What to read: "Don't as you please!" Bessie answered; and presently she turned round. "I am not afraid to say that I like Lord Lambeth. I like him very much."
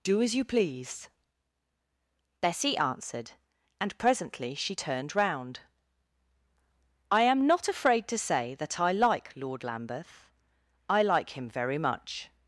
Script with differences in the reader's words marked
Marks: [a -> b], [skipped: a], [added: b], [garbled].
["Don't -> Do] as you please!" Bessie answered; and presently she turned round. "I am not afraid to say that I like Lord Lambeth. I like him very much."